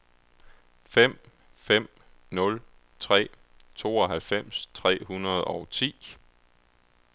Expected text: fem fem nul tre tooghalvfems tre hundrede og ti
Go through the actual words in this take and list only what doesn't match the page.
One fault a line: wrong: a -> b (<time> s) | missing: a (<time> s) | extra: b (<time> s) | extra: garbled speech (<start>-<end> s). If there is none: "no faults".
no faults